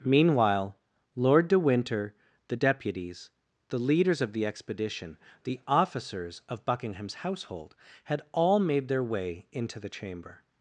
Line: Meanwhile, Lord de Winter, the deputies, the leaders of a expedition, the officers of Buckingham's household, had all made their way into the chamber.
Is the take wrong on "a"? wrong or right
wrong